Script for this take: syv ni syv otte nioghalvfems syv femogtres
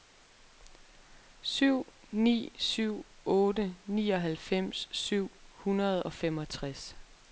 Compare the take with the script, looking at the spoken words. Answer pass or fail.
fail